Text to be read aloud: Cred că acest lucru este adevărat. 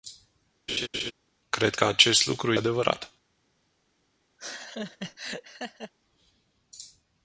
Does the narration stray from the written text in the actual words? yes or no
yes